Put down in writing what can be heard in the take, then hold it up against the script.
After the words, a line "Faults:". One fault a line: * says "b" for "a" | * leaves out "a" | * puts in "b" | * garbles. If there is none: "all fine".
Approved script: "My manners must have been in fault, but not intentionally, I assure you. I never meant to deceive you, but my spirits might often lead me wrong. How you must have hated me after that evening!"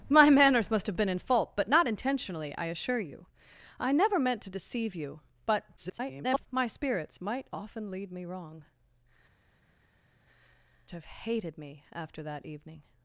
"My manners must have been in fault, but not intentionally, I assure you. I never meant to deceive you, but [garbled] my spirits might often lead me wrong. Have hated me after that evening!"
Faults:
* garbles
* leaves out "How you must"